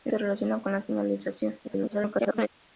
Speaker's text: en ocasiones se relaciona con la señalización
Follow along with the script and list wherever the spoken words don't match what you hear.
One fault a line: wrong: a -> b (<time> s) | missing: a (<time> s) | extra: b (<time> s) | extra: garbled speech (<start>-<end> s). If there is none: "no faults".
missing: ocasiones (0.1 s)
extra: garbled speech (1.6-2.5 s)